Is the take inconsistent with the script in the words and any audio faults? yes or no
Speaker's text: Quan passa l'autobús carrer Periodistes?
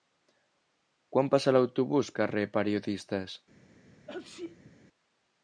yes